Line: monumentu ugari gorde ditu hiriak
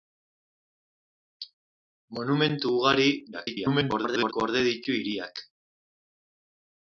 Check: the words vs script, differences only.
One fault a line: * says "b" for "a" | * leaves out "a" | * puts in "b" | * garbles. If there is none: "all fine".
* garbles